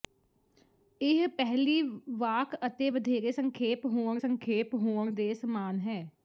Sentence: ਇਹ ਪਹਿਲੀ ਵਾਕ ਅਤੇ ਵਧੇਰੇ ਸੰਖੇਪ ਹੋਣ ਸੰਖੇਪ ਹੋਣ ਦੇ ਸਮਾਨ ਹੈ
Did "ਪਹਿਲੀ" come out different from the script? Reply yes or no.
no